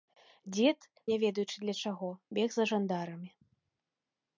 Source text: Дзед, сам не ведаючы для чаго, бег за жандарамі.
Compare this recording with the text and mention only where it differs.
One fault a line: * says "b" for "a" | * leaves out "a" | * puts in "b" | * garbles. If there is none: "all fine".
* leaves out "сам"